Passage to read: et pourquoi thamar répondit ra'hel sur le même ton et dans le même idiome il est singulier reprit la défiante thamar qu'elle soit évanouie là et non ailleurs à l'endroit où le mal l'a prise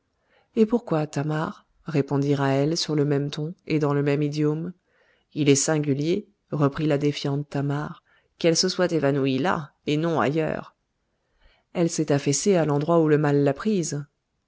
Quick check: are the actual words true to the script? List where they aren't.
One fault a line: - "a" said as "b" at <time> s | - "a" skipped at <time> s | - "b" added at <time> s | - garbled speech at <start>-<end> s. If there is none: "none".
- "se" added at 8.5 s
- "elle s'est affaissée" added at 11.7 s